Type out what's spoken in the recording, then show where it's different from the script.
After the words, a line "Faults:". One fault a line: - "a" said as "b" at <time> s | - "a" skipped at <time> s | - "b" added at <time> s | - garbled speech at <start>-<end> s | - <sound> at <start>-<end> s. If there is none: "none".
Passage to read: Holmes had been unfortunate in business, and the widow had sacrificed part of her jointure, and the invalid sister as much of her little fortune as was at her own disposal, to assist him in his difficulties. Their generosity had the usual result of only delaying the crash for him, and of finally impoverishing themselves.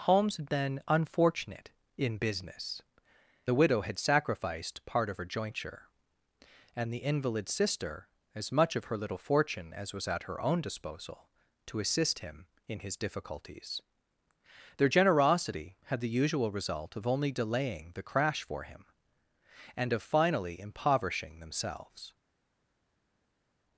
Holmes had been unfortunate in business, the widow had sacrificed part of her jointure, and the invalid sister as much of her little fortune as was at her own disposal, to assist him in his difficulties. Their generosity had the usual result of only delaying the crash for him, and of finally impoverishing themselves.
Faults:
- "and" skipped at 2.8 s